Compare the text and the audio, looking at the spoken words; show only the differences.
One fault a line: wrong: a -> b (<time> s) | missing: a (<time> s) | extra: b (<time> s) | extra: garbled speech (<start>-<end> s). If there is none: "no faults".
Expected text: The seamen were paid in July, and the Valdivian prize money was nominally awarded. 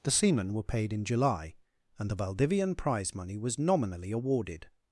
no faults